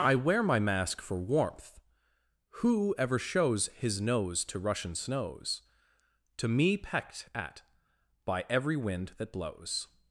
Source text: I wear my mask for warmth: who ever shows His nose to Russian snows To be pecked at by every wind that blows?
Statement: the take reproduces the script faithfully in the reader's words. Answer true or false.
false